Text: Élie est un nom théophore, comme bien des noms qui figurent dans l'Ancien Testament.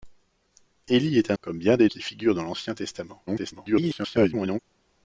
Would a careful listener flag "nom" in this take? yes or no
yes